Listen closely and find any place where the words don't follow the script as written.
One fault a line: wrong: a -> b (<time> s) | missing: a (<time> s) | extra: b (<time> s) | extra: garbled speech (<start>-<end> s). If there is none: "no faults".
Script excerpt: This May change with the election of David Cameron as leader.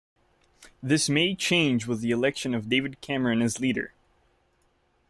no faults